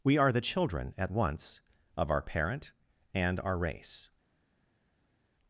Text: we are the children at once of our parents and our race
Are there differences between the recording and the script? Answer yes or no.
yes